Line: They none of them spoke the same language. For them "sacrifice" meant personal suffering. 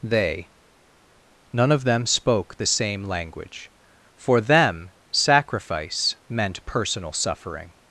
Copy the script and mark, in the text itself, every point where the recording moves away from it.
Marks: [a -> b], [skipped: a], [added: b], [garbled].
They none of them spoke the same language. For them "sacrifice" meant personal suffering.